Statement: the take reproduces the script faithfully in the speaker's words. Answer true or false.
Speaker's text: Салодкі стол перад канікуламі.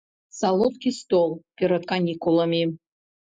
true